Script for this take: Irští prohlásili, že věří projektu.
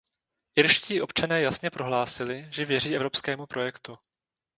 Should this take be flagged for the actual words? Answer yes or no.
yes